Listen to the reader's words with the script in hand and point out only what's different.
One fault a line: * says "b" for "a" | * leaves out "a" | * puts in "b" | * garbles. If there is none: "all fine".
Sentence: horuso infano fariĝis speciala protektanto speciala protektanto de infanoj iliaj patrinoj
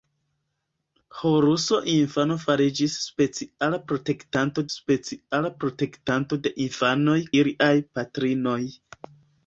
all fine